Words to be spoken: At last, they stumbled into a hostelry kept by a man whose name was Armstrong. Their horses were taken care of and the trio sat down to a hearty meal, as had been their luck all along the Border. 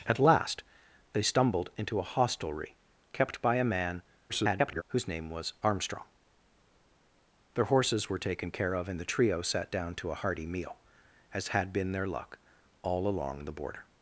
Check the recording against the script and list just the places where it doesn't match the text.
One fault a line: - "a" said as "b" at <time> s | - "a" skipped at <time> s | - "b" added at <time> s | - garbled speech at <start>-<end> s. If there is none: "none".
- garbled speech at 4.3-4.8 s